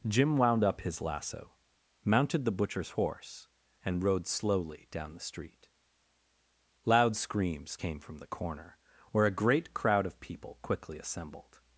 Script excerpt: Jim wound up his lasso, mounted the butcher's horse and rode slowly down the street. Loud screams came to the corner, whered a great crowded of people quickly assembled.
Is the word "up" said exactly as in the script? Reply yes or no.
yes